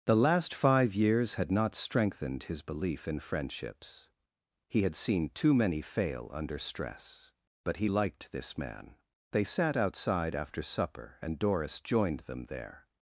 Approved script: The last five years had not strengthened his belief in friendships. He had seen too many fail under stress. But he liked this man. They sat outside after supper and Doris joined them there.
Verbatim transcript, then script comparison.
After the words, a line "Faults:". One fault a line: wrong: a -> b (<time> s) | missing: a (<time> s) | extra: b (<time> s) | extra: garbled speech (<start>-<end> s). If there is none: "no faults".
The last five years had not strengthened his belief in friendships. He had seen too many fail under stress. But he liked this man. They sat outside after supper and Doris joined them there.
Faults:
no faults